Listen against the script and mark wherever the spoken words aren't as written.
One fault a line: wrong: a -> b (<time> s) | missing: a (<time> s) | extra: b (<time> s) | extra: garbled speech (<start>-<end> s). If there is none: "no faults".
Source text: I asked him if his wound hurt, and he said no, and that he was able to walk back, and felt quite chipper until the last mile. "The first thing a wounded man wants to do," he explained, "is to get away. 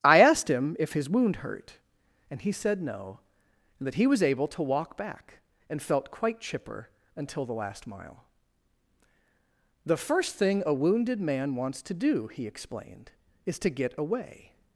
no faults